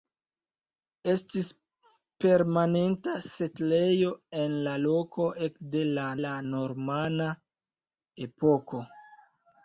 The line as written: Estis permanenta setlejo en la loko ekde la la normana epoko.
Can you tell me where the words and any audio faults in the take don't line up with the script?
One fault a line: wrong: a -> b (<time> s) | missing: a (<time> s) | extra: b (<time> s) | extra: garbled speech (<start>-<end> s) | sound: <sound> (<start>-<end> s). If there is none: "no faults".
no faults